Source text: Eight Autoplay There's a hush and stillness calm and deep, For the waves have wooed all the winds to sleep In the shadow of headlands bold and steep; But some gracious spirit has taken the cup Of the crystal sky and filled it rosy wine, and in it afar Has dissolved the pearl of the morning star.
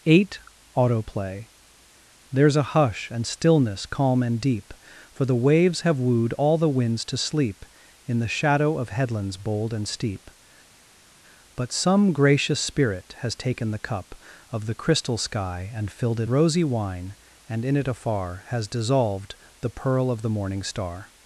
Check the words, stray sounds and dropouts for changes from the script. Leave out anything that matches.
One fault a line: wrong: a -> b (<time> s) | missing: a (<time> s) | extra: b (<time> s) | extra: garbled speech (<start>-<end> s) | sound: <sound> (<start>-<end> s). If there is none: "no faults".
no faults